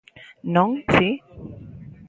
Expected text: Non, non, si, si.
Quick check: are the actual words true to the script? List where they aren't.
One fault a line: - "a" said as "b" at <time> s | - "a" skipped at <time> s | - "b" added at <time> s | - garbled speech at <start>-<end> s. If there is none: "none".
- "non si" skipped at 0.7 s